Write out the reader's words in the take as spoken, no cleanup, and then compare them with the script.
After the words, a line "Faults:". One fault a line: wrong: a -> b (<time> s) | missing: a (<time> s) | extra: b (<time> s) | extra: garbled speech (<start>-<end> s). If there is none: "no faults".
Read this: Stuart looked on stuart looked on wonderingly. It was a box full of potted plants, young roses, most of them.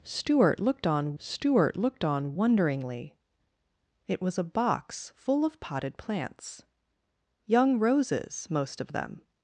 Stuart looked on stuart looked on wonderingly. It was a box full of potted plants, young roses, most of them.
Faults:
no faults